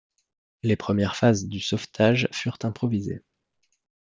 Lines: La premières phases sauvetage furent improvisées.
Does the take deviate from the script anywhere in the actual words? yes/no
yes